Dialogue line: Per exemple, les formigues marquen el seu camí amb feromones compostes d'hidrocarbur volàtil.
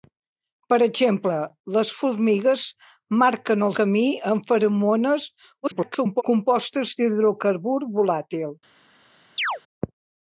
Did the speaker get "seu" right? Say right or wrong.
wrong